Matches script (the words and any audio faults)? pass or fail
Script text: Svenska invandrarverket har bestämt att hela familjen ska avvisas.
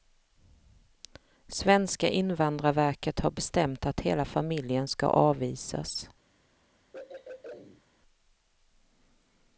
fail